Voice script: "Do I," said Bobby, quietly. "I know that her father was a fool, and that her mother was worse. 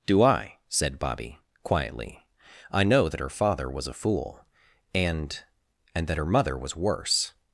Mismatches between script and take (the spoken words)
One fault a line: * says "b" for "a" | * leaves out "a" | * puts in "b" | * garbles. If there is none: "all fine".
* puts in "and"